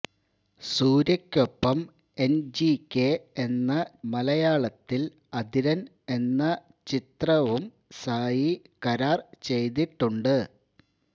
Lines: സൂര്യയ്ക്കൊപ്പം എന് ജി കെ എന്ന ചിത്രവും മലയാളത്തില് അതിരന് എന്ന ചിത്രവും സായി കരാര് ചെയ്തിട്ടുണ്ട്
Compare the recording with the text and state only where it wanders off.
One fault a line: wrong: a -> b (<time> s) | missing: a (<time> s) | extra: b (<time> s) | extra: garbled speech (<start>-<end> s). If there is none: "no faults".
missing: ചിത്രവും (3.7 s)